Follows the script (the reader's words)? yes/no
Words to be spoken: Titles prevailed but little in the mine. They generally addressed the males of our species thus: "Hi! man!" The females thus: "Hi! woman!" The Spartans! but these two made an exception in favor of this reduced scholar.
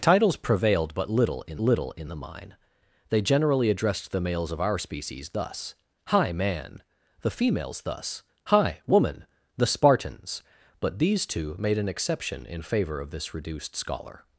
no